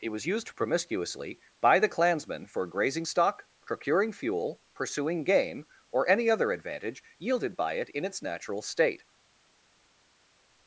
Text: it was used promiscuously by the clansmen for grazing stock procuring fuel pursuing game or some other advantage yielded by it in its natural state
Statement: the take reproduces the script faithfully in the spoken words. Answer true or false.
false